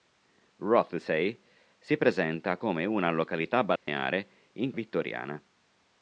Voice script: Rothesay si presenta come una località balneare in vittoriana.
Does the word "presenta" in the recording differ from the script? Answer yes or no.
no